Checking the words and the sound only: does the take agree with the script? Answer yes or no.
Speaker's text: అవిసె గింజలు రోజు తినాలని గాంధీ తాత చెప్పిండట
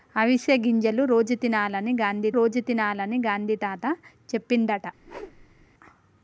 no